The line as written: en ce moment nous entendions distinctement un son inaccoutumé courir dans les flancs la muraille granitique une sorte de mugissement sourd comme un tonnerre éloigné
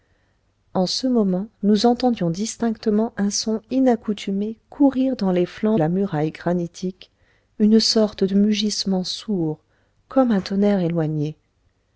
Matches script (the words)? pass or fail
pass